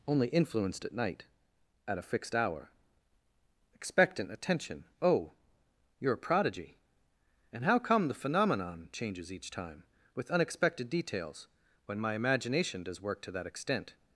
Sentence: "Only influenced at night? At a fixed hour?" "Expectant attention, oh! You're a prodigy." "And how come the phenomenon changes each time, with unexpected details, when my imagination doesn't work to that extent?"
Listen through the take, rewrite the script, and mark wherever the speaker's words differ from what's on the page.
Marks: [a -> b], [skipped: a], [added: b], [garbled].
"Only influenced at night? At a fixed hour?" "Expectant attention, oh! You're a prodigy." "And how come the phenomenon changes each time, with unexpected details, when my imagination [doesn't -> does] work to that extent?"